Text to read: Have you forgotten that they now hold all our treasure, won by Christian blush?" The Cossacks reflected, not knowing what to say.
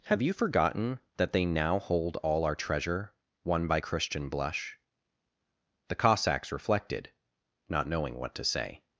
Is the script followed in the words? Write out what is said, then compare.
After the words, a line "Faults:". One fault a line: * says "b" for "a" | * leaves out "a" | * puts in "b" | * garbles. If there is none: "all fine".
Have you forgotten that they now hold all our treasure, won by Christian blush?" The Cossacks reflected, not knowing what to say.
Faults:
all fine